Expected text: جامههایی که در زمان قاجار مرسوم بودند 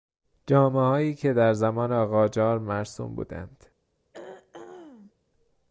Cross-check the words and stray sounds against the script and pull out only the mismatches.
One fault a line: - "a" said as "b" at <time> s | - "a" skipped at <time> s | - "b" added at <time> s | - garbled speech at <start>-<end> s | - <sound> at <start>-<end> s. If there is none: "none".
- throat clearing at 4.1-5.1 s